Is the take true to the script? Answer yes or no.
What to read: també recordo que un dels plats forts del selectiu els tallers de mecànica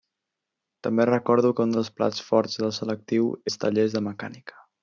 yes